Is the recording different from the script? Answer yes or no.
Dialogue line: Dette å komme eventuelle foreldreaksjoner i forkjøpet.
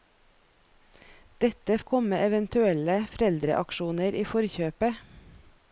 no